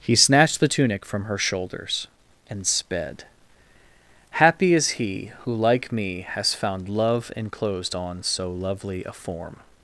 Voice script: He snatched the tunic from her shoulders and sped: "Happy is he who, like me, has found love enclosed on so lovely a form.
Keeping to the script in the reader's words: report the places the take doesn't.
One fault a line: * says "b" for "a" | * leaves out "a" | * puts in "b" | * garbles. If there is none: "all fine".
all fine